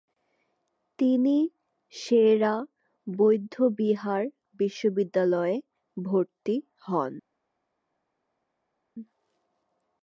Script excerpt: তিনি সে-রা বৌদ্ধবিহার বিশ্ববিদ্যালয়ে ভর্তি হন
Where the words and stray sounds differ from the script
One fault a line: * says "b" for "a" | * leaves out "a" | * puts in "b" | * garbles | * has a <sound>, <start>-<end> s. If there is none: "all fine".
all fine